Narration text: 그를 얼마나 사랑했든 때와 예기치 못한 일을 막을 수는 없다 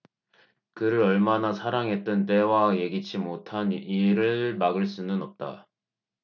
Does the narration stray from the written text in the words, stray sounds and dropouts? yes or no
no